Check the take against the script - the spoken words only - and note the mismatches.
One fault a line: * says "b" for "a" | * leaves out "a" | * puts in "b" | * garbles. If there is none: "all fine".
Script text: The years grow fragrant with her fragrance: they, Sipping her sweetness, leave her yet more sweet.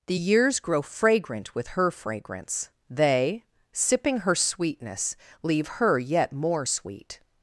all fine